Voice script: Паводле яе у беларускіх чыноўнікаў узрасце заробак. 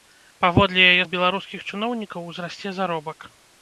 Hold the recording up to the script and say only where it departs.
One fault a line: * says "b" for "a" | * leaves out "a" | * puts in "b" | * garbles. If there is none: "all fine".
all fine